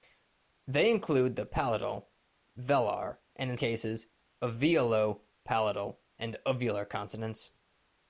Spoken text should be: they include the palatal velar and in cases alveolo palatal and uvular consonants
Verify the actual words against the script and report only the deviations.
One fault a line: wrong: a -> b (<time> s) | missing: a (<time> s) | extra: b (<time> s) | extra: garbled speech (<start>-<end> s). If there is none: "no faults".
no faults